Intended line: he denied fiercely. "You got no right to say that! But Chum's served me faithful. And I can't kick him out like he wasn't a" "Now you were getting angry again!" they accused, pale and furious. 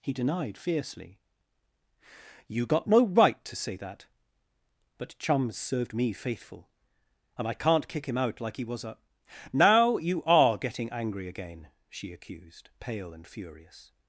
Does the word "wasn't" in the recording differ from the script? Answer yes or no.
yes